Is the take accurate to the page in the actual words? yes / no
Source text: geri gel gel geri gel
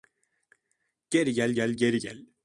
yes